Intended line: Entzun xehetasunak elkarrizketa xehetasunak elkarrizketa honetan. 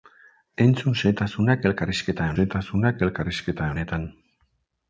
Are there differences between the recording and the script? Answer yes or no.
no